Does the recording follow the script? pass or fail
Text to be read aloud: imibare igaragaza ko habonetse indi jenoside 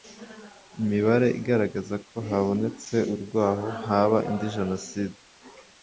fail